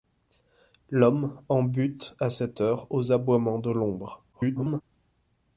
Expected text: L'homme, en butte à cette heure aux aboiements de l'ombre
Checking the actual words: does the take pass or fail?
fail